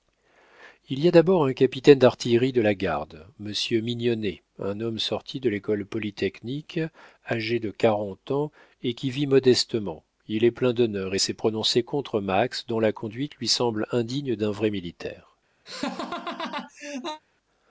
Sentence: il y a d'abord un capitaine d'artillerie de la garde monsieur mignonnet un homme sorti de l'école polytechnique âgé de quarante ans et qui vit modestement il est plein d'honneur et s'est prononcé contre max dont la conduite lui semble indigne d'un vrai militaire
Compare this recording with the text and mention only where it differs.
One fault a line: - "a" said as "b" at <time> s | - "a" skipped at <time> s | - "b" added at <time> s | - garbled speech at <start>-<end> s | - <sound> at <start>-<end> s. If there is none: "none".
- laugh at 15.7-17.2 s